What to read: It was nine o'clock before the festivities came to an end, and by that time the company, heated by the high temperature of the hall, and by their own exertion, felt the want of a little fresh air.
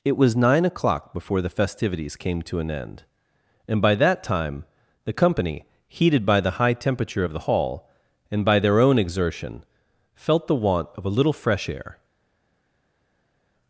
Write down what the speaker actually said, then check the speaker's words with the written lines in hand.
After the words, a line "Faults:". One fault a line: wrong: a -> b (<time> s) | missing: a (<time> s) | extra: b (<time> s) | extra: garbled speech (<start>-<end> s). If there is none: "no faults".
It was nine o'clock before the festivities came to an end, and by that time the company, heated by the high temperature of the hall, and by their own exertion, felt the want of a little fresh air.
Faults:
no faults